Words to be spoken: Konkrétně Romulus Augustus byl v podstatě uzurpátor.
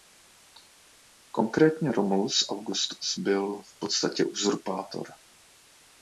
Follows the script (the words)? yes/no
yes